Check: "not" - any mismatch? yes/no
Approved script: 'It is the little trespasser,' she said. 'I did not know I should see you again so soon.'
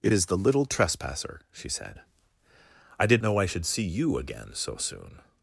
yes